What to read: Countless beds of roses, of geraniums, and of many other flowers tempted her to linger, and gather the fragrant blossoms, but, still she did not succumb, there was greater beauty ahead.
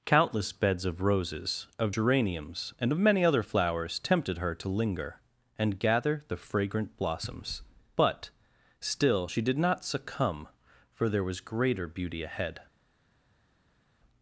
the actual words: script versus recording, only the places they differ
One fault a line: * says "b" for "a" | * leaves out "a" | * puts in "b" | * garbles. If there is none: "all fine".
* puts in "for"